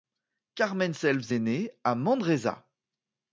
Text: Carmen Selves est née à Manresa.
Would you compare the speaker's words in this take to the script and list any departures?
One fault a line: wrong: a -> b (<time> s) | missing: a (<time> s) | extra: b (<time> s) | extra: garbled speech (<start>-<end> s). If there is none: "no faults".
no faults